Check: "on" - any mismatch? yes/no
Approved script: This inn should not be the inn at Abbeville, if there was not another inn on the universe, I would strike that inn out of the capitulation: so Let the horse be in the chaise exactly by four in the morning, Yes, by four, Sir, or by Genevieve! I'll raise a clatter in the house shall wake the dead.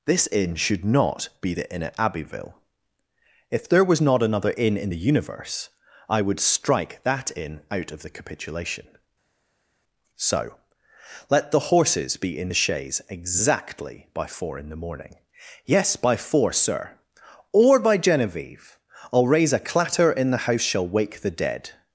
yes